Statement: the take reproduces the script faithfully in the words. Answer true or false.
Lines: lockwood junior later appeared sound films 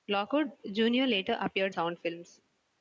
true